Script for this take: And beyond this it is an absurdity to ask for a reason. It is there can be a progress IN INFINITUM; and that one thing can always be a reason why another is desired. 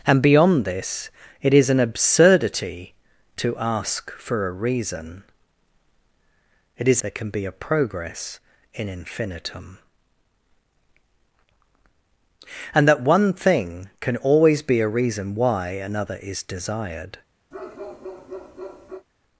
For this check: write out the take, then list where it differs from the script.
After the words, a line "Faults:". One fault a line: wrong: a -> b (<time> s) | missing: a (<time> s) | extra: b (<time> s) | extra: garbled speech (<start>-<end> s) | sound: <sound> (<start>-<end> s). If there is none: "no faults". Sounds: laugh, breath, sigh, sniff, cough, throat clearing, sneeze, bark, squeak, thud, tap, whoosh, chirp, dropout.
And beyond this it is an absurdity to ask for a reason. It is there can be a progress IN INFINITUM; and that one thing can always be a reason why another is desired.
Faults:
sound: bark (17.5-19.1 s)